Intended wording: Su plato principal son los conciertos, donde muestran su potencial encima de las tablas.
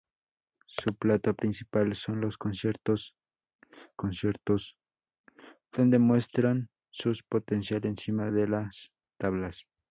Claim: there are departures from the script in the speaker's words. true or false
true